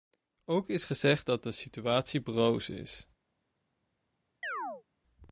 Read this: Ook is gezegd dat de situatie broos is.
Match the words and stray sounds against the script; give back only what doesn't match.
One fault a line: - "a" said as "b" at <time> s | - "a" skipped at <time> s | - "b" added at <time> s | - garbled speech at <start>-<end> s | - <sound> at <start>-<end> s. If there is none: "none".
- chirp at 4.4-4.8 s